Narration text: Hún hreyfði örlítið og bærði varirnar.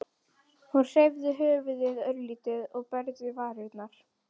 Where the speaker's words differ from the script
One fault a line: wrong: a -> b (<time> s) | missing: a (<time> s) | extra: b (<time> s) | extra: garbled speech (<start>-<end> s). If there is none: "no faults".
extra: höfuðið (1.4 s)